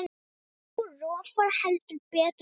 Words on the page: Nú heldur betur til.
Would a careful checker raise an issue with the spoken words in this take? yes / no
yes